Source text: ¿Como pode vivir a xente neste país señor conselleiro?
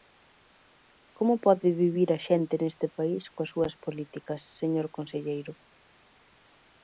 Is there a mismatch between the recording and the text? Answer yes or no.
yes